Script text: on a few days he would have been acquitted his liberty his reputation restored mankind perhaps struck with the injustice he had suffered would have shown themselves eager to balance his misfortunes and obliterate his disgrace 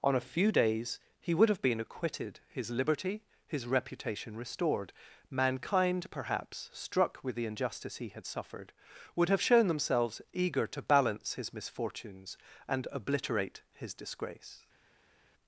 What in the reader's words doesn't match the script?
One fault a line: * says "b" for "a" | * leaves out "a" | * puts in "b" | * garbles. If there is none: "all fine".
all fine